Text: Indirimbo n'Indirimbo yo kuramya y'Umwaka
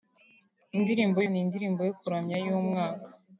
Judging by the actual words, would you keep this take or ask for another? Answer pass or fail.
pass